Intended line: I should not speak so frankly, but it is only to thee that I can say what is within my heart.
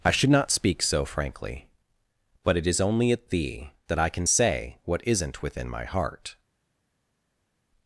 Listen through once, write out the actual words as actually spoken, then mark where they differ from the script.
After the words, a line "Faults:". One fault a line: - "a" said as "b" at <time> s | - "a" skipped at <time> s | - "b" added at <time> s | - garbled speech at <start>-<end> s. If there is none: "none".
I should not speak so frankly, but it is only at thee that I can say what isn't within my heart.
Faults:
- "to" said as "at" at 3.1 s
- "is" said as "isn't" at 5.0 s